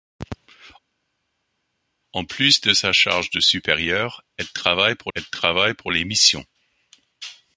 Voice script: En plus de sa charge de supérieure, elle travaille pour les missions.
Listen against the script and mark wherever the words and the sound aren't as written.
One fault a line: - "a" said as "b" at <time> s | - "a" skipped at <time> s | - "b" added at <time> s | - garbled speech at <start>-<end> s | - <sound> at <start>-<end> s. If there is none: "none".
- "elle travaille pour" added at 5.1 s